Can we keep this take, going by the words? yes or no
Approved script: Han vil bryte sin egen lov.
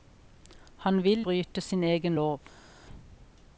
yes